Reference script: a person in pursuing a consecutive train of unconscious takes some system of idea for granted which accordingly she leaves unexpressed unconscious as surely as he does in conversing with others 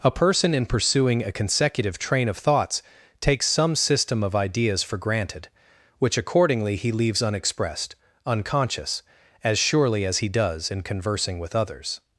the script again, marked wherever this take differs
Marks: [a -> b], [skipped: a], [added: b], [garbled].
a person in pursuing a consecutive train of [unconscious -> thoughts] takes some system of [idea -> ideas] for granted which accordingly [she -> he] leaves unexpressed unconscious as surely as he does in conversing with others